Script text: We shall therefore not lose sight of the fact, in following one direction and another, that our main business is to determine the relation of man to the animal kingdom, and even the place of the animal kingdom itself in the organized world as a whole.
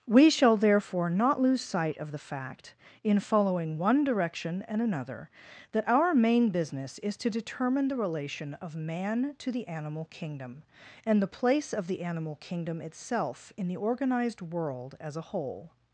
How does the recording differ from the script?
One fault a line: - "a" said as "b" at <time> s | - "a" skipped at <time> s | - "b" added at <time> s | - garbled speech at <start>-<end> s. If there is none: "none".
- "even" skipped at 11.2 s